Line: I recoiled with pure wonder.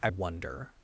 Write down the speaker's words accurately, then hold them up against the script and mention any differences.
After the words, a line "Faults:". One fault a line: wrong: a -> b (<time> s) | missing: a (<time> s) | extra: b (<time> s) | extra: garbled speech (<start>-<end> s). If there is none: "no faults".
I wonder.
Faults:
missing: recoiled with pure (0.1 s)